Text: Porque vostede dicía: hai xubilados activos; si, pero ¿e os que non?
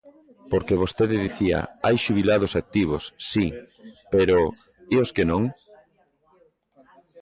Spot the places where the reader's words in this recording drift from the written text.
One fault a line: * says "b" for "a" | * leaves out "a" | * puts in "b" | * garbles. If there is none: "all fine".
all fine